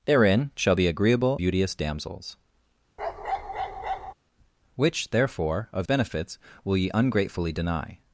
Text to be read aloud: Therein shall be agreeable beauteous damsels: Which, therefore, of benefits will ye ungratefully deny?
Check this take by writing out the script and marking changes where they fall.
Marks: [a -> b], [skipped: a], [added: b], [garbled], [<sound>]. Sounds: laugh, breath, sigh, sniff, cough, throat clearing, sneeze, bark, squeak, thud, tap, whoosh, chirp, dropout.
Therein shall be agreeable beauteous damsels: [bark] Which, therefore, of benefits will ye ungratefully deny?